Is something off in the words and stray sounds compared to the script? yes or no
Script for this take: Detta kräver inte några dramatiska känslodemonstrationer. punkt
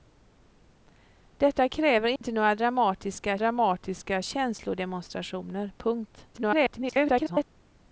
yes